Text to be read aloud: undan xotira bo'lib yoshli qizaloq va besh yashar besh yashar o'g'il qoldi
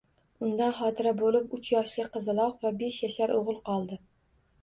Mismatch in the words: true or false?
true